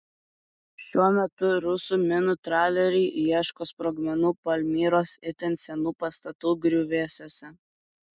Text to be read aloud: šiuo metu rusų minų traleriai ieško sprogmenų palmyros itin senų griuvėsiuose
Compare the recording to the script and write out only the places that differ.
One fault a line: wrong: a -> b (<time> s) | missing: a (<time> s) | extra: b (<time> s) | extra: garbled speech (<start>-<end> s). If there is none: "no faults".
extra: pastatų (6.0 s)